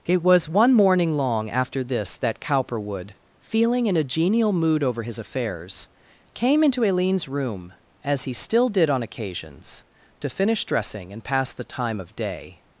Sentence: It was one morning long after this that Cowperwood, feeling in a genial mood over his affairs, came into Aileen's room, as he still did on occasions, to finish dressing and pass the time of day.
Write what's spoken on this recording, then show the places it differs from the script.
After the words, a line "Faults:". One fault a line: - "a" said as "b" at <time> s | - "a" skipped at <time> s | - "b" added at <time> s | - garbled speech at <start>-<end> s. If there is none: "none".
It was one morning long after this that Cowperwood, feeling in a genial mood over his affairs, came into Aileen's room, as he still did on occasions, to finish dressing and pass the time of day.
Faults:
none